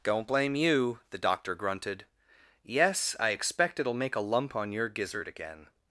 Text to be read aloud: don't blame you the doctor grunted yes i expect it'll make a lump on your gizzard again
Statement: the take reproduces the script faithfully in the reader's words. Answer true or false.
true